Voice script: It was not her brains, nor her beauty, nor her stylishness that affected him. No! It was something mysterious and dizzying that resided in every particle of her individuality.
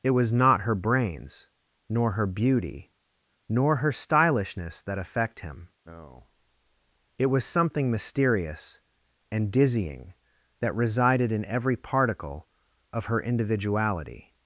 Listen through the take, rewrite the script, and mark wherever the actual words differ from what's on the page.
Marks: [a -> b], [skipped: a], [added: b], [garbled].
It was not her brains, nor her beauty, nor her stylishness that [affected -> affect] him. No! It was something mysterious and dizzying that resided in every particle of her individuality.